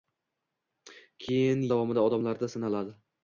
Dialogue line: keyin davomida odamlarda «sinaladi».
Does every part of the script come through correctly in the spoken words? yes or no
yes